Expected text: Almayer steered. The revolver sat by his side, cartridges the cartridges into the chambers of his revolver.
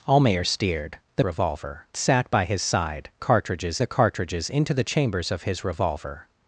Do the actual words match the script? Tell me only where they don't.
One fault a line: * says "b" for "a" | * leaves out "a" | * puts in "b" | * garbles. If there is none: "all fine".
all fine